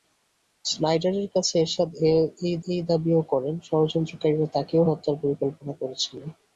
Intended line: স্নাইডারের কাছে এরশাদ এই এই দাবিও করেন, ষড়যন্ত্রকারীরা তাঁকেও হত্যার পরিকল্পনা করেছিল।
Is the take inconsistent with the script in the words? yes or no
no